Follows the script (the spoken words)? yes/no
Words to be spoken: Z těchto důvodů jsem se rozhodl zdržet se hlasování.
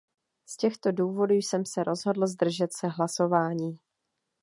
yes